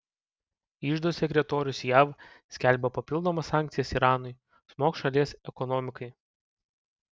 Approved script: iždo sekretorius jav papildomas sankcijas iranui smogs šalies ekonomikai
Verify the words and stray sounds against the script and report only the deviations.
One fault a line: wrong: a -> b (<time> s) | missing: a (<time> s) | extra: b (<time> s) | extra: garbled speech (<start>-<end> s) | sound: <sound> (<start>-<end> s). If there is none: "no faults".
extra: skelbia (2.6 s)